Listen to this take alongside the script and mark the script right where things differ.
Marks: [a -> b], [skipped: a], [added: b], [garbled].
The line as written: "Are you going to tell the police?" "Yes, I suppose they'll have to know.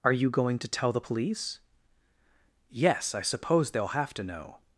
"Are you going to tell the police?" "Yes, I suppose they'll have to know.